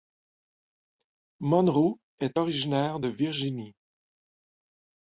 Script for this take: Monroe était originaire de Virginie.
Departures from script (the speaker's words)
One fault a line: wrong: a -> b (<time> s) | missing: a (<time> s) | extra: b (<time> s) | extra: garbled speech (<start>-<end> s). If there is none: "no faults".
wrong: était -> est (2.2 s)